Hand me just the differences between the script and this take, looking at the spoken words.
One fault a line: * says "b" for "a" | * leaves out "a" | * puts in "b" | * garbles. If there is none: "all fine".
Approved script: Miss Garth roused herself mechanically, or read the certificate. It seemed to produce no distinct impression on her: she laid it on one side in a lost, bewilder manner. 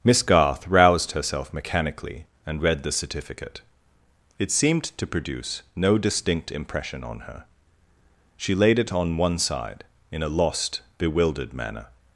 * says "and" for "or"
* says "bewildered" for "bewilder"